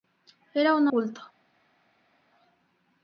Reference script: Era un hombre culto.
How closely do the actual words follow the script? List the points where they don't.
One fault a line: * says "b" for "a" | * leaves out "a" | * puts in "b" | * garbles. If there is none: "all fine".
* leaves out "hombre"